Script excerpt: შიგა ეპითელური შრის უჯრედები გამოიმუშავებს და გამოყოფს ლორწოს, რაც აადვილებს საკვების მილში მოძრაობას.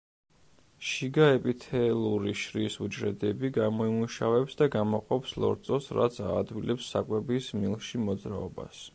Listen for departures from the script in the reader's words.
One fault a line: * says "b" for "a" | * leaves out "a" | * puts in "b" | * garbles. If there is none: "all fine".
all fine